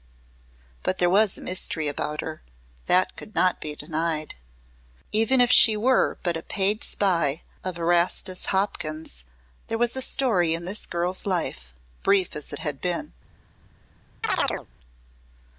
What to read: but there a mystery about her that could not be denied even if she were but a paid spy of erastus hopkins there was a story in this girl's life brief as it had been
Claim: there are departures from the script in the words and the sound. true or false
true